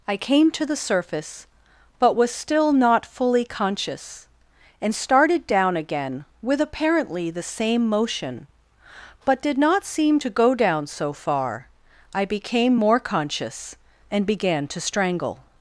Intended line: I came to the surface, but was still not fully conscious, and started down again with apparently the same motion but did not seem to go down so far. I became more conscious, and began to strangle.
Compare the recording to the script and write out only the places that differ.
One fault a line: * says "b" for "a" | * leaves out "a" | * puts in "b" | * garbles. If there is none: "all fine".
all fine